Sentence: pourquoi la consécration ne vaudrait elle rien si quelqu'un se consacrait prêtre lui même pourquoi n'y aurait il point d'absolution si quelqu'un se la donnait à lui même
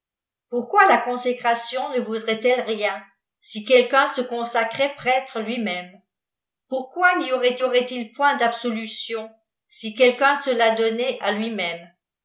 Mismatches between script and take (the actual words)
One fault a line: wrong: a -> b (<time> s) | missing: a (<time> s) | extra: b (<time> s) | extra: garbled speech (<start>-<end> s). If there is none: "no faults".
extra: aurait (7.6 s)